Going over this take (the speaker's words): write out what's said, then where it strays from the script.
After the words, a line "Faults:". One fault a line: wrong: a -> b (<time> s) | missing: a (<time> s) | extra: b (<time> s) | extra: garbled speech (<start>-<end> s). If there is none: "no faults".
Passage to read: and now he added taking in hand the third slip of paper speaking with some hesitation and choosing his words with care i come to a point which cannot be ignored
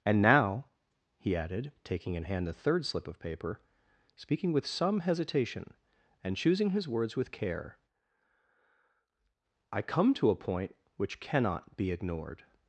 and now he added taking in hand the third slip of paper speaking with some hesitation and choosing his words with care i come to a point which cannot be ignored
Faults:
no faults